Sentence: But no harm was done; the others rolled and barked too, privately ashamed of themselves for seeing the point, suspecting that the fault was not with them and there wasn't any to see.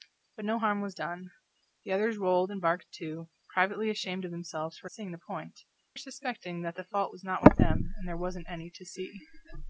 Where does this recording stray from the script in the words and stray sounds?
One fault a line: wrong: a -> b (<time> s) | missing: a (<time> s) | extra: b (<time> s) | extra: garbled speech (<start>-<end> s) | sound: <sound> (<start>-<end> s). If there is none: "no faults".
no faults